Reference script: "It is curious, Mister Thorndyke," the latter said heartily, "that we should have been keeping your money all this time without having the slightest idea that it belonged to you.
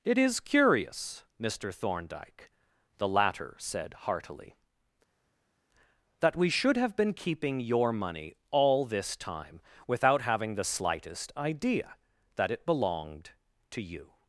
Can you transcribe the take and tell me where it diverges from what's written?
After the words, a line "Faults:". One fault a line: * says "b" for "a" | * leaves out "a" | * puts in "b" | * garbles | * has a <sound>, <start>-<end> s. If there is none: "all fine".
"It is curious, Mister Thorndyke," the latter said heartily, "that we should have been keeping your money all this time without having the slightest idea that it belonged to you.
Faults:
all fine